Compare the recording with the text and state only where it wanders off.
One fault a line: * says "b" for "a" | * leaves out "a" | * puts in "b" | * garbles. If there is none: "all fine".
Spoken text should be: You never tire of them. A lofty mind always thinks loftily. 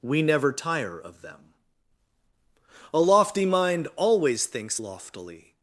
* says "We" for "You"